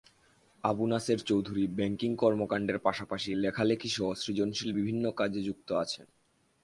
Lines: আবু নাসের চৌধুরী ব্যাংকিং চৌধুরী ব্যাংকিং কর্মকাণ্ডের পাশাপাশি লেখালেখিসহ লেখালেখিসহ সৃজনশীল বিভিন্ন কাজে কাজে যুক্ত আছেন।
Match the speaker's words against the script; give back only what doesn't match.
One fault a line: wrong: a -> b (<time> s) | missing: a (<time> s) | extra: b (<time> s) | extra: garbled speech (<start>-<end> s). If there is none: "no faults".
missing: চৌধুরী ব্যাংকিং (2.1 s)
missing: লেখালেখিসহ (4.1 s)
missing: কাজে (5.4 s)